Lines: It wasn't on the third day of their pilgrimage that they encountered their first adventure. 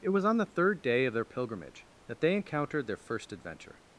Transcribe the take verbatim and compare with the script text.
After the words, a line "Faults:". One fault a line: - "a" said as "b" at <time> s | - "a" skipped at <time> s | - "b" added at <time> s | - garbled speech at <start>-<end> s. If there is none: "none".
It was on the third day of their pilgrimage that they encountered their first adventure.
Faults:
- "wasn't" said as "was" at 0.1 s